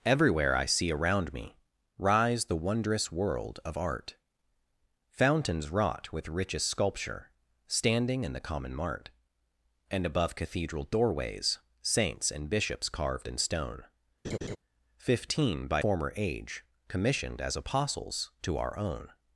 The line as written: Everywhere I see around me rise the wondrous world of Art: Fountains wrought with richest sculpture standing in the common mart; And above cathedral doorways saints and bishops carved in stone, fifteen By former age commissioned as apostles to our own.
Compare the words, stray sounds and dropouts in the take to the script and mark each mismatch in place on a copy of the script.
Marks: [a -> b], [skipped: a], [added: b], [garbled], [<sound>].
Everywhere I see around me rise the wondrous world of Art: Fountains wrought with richest sculpture standing in the common mart; And above cathedral doorways saints and bishops carved in stone, [laugh] fifteen By former age commissioned as apostles to our own.